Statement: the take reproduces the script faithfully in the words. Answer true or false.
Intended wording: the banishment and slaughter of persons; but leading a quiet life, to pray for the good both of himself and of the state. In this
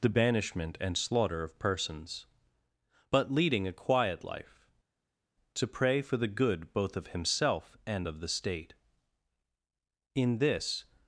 true